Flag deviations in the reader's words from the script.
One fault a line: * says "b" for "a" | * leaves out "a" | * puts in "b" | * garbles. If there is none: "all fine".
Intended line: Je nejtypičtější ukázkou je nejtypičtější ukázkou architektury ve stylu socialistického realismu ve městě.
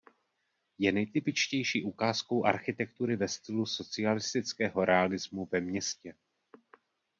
* leaves out "je nejtypičtější ukázkou"